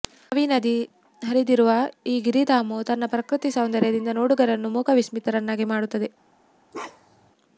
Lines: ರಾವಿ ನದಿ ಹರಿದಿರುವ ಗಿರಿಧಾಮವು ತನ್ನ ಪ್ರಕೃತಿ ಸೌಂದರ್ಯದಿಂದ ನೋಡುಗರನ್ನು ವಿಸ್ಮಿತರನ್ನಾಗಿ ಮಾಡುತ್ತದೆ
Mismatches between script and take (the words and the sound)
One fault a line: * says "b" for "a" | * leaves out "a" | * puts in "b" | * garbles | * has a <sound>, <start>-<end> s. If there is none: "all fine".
* puts in "ಈ"
* puts in "ಮೂಕ"
* has a bark, 6.7-7.3 s